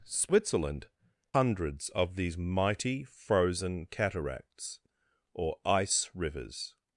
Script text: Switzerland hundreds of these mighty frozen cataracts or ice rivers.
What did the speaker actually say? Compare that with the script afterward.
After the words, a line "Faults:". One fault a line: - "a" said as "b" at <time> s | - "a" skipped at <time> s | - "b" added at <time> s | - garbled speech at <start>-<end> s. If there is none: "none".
Switzerland hundreds of these mighty frozen cataracts or ice rivers.
Faults:
none